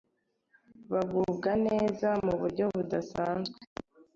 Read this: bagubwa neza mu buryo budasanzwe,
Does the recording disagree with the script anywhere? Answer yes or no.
no